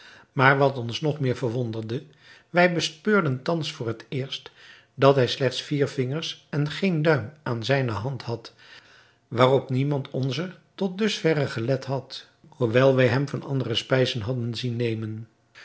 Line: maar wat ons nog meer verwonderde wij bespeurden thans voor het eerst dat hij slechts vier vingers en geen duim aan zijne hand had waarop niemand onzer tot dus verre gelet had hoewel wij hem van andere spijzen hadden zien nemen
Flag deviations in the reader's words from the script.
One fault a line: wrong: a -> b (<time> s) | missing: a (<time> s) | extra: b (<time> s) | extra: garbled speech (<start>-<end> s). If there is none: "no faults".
no faults